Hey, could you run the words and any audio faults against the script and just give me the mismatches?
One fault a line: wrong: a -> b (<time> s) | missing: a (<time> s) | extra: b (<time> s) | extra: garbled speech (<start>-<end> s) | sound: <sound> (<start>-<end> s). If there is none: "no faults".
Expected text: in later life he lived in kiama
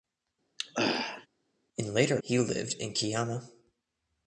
sound: throat clearing (0.6-1.3 s)
missing: life (2.2 s)